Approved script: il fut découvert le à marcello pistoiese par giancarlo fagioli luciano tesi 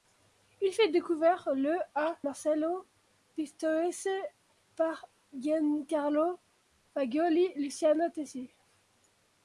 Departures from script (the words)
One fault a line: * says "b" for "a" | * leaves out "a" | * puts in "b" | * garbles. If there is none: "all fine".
all fine